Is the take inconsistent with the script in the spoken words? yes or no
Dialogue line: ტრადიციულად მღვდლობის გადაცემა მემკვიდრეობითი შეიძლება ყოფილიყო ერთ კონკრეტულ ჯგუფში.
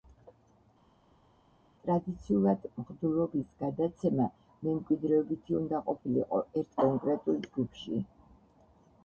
yes